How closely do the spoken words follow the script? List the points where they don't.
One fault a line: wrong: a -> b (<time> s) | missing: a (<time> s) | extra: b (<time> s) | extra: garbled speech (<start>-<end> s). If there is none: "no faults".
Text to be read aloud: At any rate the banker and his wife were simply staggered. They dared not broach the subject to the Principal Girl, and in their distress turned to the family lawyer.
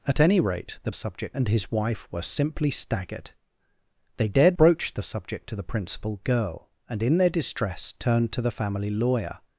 wrong: banker -> subject (0.9 s)
missing: not (4.6 s)